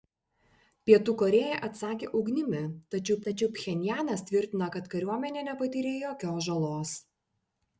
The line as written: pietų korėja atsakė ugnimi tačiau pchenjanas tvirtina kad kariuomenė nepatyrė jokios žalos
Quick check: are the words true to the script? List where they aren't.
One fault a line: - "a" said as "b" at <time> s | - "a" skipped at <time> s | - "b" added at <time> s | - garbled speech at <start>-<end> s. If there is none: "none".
- "tačiau" added at 3.3 s